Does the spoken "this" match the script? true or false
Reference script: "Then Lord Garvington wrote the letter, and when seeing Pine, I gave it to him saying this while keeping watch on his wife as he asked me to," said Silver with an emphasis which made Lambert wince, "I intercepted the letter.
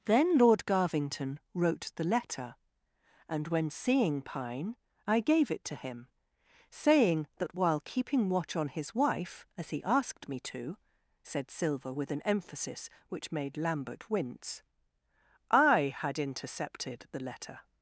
false